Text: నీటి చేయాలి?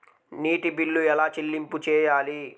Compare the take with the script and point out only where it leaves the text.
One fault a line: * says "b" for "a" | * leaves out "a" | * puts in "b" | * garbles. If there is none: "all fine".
* puts in "బిల్లు ఎలా చెల్లింపు"